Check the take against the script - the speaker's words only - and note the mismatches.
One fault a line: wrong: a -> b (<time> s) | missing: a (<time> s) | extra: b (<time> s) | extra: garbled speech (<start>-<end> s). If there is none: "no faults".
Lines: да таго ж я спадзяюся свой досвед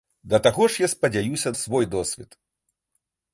no faults